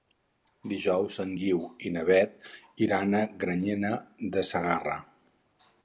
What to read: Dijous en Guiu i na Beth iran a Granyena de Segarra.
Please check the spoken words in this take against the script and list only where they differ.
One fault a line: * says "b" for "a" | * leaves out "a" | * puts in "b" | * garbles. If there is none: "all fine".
all fine